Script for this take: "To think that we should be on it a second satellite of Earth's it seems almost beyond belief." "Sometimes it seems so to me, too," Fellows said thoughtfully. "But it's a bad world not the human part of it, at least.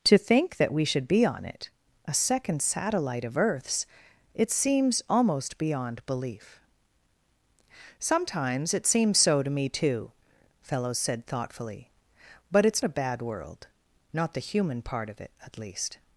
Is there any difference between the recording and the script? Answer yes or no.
no